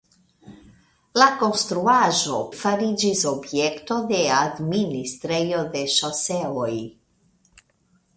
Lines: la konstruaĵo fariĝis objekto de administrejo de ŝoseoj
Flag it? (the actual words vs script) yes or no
no